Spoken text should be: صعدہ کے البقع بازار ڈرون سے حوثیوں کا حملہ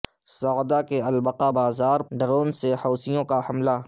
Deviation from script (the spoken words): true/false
false